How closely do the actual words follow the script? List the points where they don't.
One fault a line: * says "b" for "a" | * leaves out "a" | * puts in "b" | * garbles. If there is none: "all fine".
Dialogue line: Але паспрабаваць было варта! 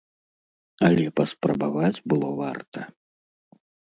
all fine